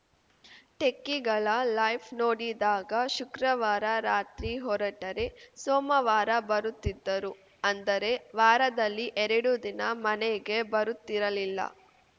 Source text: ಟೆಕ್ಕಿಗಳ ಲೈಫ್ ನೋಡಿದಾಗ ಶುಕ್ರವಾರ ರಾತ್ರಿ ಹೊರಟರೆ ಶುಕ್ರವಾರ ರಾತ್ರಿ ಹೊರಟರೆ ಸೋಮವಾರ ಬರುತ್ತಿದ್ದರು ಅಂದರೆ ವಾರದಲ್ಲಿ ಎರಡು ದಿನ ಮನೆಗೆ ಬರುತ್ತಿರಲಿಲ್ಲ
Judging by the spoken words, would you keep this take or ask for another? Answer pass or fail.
fail